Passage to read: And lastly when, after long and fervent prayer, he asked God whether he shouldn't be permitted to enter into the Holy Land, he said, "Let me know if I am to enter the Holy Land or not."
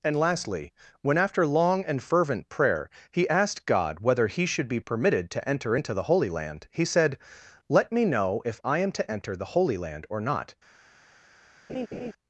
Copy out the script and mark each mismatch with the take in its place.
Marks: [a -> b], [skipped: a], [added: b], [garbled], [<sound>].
And lastly when, after long and fervent prayer, he asked God whether he [shouldn't -> should] be permitted to enter into the Holy Land, he said, "Let me know if I am to enter the Holy Land or not." [laugh]